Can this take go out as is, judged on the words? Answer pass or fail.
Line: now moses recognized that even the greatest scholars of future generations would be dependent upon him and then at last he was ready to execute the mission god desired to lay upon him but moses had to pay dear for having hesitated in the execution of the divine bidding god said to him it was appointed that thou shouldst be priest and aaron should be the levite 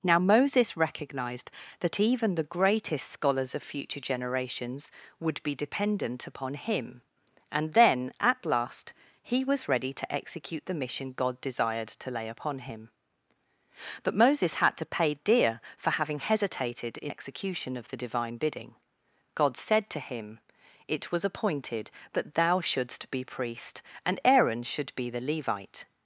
fail